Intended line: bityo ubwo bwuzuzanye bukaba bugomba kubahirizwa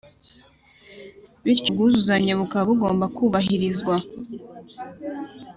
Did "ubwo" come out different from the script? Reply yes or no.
yes